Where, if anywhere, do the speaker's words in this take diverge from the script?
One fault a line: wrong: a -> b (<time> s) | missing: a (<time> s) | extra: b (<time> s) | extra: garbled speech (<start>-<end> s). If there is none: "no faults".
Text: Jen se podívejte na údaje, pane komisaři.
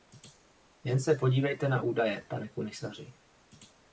no faults